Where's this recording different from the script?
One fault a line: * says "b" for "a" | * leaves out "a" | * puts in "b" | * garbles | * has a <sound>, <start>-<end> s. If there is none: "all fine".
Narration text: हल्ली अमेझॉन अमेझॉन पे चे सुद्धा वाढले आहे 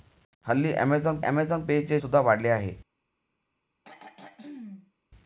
* has a throat clearing, 3.8-4.9 s